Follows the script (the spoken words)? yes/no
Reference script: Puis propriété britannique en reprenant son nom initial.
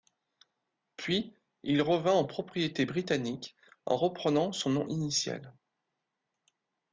no